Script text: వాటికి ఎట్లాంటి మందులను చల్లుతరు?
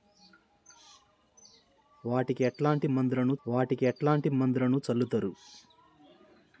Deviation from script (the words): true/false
true